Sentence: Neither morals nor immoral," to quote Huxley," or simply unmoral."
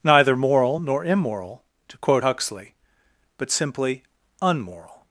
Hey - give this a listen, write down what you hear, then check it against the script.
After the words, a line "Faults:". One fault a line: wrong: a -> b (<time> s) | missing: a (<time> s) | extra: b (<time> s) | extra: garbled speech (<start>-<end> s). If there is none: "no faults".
Neither moral nor immoral," to quote Huxley," but simply unmoral."
Faults:
wrong: morals -> moral (0.3 s)
wrong: or -> but (3.4 s)